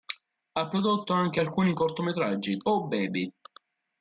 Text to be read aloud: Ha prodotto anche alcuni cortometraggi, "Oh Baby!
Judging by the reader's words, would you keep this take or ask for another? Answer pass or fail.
pass